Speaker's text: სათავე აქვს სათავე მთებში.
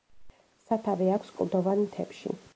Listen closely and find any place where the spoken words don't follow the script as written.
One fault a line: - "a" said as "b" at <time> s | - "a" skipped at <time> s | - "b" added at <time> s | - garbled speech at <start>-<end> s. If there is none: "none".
- "სათავე" said as "კლდოვან" at 1.4 s